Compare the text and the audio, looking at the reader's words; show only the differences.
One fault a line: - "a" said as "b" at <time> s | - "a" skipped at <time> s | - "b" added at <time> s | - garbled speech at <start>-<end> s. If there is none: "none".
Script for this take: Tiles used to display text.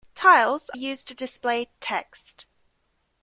none